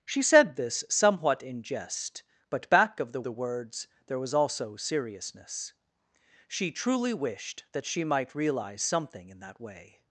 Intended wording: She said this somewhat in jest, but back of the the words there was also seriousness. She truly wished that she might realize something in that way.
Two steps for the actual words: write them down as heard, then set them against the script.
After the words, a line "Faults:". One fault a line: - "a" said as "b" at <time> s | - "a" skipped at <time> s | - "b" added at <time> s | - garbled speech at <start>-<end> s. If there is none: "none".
She said this somewhat in jest, but back of the the words there was also seriousness. She truly wished that she might realize something in that way.
Faults:
none